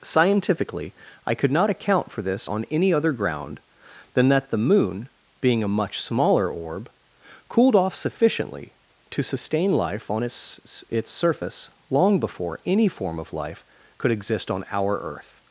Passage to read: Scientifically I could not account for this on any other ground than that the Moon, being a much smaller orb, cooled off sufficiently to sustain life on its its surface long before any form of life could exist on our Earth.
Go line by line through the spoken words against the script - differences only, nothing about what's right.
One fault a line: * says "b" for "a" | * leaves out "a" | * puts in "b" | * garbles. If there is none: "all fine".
all fine